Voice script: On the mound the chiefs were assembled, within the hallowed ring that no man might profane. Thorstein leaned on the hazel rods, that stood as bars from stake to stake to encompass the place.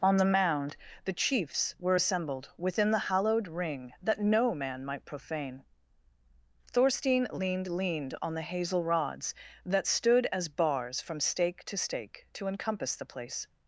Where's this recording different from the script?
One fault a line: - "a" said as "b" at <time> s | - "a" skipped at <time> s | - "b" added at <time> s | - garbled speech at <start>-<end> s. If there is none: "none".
- "leaned" added at 7.7 s